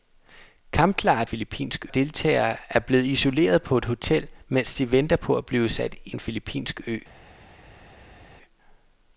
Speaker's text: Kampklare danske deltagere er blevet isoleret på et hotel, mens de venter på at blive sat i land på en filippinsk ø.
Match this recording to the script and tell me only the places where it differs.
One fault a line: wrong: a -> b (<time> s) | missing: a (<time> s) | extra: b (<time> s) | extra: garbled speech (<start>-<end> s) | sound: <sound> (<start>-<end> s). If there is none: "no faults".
wrong: danske -> filippinsk (1.2 s)
missing: land på (6.2 s)